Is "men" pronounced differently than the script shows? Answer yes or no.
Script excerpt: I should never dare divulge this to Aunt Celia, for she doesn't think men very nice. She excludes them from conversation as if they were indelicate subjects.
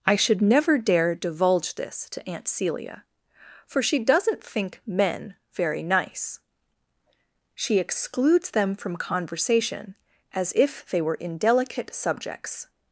no